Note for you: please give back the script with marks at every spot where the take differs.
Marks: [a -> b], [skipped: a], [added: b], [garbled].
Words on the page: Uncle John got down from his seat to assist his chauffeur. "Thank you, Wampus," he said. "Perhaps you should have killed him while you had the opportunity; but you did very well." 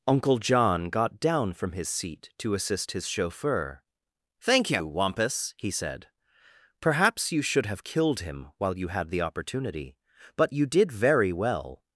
Uncle John got down from his seat to assist his chauffeur. "Thank you, Wampus," he said. "Perhaps you should have killed him while you had the opportunity; but you did very well."